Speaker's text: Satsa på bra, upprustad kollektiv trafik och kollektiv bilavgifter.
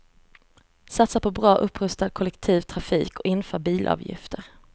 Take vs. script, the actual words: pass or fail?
fail